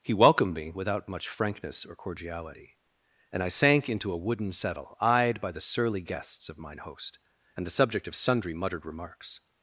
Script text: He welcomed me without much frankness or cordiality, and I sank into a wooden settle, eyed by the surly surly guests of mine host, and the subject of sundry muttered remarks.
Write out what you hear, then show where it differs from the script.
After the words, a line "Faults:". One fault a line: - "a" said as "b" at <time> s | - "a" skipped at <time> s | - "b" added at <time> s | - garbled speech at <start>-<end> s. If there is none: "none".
He welcomed me without much frankness or cordiality, and I sank into a wooden settle, eyed by the surly guests of mine host, and the subject of sundry muttered remarks.
Faults:
- "surly" skipped at 6.0 s